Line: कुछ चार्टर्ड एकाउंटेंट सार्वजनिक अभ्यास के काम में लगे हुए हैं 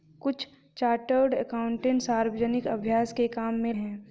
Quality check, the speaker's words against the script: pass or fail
fail